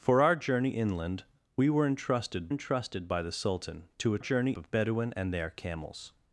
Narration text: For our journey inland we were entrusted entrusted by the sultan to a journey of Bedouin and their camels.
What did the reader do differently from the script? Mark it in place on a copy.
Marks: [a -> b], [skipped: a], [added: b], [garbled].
For our journey inland we were entrusted entrusted by the sultan to a journey of Bedouin and their camels.